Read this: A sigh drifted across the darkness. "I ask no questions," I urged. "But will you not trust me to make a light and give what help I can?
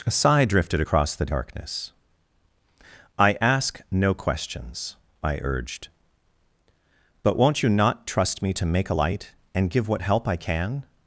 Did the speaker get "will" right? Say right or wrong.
wrong